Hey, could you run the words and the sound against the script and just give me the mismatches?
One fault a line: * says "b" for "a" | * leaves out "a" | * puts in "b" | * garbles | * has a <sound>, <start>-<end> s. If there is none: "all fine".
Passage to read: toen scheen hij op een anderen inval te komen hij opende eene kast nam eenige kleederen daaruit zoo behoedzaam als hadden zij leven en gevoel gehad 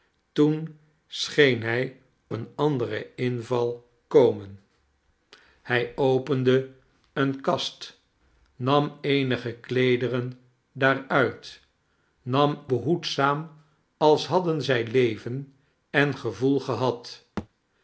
* leaves out "op"
* leaves out "te"
* says "nam" for "zoo"
* has a thud, 17.4-17.5 s